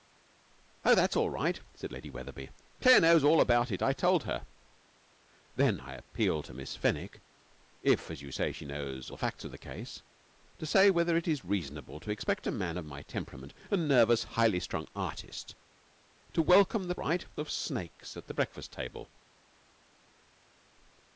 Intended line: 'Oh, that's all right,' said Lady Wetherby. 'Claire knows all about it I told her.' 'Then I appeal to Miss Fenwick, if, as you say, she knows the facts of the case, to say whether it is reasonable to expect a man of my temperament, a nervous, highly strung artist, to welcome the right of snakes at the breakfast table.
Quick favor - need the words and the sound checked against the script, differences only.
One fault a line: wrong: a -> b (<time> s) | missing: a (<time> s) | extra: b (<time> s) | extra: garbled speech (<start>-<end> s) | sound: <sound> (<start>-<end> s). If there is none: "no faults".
no faults